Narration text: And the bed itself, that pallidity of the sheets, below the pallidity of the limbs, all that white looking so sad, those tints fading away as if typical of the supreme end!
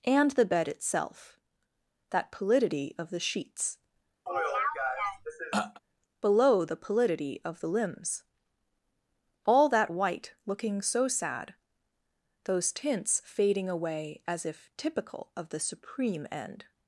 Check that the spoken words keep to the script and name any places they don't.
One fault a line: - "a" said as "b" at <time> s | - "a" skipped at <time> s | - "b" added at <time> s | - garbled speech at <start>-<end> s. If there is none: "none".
none